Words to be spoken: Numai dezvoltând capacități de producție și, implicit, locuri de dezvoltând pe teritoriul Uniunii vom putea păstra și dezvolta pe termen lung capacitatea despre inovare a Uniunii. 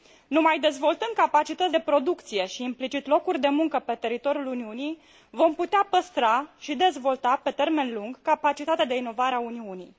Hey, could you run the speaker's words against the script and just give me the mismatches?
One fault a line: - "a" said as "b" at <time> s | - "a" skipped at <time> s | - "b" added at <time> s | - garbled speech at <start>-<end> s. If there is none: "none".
- "dezvoltând" said as "muncă" at 3.5 s
- "despre" said as "de" at 8.8 s